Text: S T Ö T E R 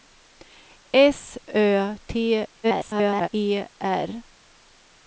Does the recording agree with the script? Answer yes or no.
no